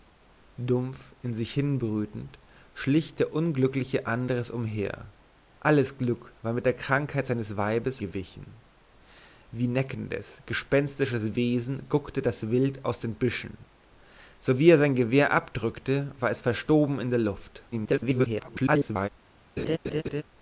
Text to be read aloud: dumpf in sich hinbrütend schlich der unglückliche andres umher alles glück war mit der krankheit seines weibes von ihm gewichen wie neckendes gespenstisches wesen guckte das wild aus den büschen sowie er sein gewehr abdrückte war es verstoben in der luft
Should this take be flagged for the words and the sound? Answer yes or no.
yes